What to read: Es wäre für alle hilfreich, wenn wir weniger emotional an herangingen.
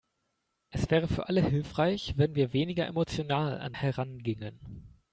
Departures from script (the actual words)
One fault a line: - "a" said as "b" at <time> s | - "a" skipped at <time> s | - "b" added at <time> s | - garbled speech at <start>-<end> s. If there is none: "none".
none